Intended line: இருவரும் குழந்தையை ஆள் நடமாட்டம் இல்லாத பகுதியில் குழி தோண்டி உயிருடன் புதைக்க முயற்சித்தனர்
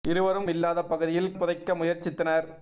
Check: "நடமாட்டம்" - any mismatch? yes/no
yes